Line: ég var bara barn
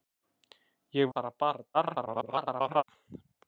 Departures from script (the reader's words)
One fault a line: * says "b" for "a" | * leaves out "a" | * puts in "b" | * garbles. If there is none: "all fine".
* leaves out "var"
* garbles